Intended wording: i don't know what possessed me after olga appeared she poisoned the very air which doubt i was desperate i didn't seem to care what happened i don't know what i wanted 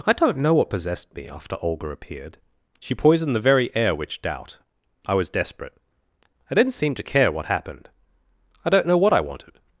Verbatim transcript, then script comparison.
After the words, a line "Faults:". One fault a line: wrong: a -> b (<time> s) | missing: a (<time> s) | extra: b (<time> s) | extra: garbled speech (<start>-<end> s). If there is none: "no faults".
i don't know what possessed me after olga appeared she poisoned the very air which doubt i was desperate i didn't seem to care what happened i don't know what i wanted
Faults:
no faults